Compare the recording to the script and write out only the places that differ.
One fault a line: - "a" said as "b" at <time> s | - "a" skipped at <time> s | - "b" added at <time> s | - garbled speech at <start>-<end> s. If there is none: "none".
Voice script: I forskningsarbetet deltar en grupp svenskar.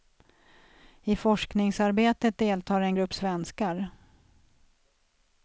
none